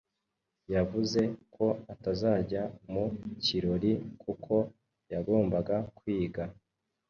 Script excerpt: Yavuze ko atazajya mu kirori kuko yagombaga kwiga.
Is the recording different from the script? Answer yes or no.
no